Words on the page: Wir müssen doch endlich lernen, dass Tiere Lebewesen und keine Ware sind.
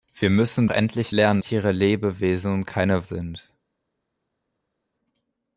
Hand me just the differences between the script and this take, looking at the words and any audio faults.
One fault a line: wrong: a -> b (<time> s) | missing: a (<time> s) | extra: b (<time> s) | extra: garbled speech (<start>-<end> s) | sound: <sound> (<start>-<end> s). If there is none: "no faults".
missing: doch (0.7 s)
missing: dass (1.4 s)
missing: Ware (3.1 s)